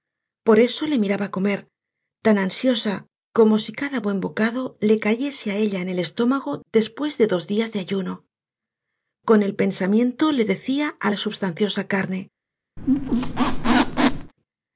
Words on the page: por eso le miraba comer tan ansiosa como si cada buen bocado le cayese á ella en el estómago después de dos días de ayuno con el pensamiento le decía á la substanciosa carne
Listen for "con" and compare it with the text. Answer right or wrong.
right